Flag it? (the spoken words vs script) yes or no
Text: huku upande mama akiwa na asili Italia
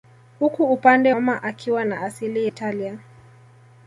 no